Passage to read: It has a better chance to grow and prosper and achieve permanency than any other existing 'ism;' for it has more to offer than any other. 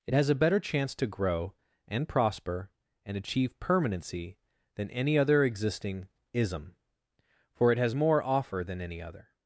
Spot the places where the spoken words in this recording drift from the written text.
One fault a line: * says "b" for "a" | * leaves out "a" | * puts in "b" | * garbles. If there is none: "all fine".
* leaves out "to"